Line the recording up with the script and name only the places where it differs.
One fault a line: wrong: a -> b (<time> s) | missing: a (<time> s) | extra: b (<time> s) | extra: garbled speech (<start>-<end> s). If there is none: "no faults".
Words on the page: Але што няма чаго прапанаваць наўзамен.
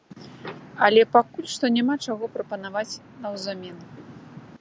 extra: пакуль (1.1 s)